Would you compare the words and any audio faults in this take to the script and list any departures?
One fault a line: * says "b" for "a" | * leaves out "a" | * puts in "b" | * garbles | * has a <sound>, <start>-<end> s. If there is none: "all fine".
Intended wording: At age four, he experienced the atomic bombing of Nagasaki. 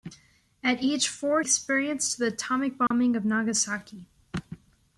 * leaves out "he"
* has a dropout, 2.9-2.9 s